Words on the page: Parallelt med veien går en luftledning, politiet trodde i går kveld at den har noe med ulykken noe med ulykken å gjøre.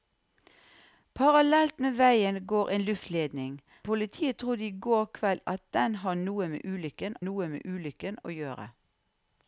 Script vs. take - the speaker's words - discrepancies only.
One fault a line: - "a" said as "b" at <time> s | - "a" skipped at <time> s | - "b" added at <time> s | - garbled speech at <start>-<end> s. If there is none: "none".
none